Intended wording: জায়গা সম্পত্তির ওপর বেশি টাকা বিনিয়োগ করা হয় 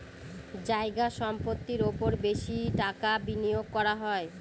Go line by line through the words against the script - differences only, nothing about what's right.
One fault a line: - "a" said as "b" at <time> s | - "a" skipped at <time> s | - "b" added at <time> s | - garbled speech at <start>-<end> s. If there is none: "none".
none